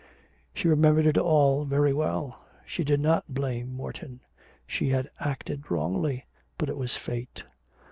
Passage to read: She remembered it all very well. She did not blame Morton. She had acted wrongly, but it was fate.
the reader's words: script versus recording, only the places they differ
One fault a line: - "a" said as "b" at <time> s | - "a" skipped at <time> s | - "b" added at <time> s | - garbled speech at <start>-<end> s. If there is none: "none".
none